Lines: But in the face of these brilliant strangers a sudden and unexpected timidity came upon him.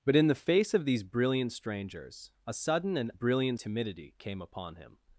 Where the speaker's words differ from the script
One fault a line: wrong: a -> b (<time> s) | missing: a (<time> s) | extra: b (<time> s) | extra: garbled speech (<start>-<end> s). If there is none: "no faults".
wrong: unexpected -> brilliant (3.1 s)